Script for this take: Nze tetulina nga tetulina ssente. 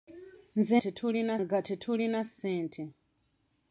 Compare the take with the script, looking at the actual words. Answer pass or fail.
pass